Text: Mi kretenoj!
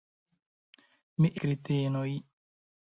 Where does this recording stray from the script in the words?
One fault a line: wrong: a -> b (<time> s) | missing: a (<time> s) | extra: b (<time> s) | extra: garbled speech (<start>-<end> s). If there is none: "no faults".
no faults